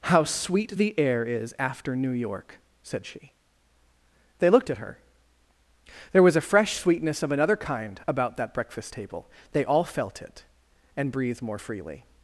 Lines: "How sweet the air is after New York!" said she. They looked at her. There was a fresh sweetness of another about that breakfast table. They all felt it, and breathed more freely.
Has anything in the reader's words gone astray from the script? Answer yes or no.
yes